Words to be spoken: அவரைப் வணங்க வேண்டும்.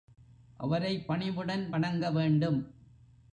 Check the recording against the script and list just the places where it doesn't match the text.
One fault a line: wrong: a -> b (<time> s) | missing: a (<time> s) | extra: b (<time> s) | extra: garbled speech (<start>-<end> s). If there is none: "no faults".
extra: பணிவுடன் (1.1 s)